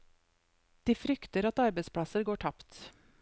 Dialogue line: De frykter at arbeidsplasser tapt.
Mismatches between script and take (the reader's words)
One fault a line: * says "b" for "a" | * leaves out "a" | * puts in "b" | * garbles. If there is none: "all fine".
* puts in "går"